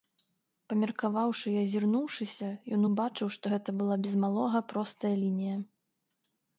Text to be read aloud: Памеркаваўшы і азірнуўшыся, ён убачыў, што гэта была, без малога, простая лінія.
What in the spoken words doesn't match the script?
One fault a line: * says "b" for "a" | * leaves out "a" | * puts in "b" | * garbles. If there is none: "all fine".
all fine